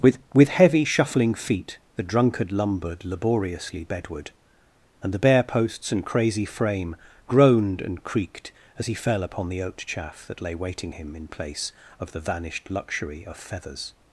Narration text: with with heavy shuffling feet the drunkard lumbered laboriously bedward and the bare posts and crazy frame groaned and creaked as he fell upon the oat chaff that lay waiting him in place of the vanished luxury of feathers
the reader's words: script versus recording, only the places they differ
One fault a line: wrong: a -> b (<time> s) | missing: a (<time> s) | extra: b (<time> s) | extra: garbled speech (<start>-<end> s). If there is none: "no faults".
no faults